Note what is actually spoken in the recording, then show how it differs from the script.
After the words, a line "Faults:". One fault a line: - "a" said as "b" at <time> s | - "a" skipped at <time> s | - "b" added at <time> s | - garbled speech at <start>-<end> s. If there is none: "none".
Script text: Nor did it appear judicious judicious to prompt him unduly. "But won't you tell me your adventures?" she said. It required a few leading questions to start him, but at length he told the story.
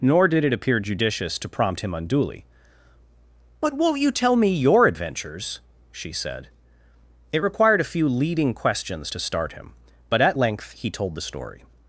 Nor did it appear judicious to prompt him unduly. "But won't you tell me your adventures?" she said. It required a few leading questions to start him, but at length he told the story.
Faults:
- "judicious" skipped at 1.4 s